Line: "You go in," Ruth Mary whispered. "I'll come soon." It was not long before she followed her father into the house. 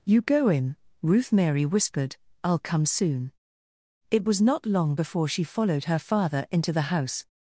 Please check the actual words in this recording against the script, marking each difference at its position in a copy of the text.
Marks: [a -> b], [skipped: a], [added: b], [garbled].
"You go in," Ruth Mary whispered. "I'll come soon." It was not long before she followed her father into the house.